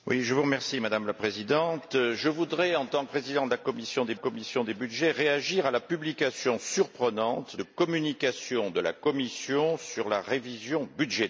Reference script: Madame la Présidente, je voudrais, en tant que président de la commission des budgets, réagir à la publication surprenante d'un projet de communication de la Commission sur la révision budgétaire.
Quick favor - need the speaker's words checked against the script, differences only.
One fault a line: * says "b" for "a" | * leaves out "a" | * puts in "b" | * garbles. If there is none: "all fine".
* leaves out "que"
* puts in "commission des"
* leaves out "d'un projet"